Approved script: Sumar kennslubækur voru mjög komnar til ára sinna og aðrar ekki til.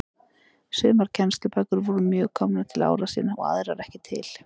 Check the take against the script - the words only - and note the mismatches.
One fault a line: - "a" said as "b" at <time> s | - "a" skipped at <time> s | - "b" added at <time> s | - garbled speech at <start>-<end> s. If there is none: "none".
none